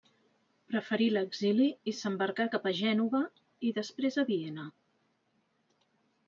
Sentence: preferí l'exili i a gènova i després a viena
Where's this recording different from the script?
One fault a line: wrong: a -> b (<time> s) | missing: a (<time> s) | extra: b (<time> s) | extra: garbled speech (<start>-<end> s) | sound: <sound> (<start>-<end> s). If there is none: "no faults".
extra: s'embarcà cap (2.0 s)